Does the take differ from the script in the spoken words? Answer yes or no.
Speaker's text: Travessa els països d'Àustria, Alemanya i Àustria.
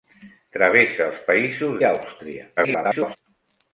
yes